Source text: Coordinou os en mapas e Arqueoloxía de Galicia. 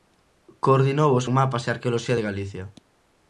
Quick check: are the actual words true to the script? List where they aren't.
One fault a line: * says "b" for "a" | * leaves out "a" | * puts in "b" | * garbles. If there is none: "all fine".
all fine